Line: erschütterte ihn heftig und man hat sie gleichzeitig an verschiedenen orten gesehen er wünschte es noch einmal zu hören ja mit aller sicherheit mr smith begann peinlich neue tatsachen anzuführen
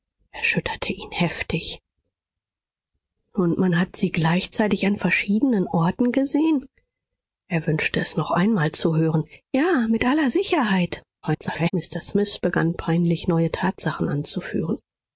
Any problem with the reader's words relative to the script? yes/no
yes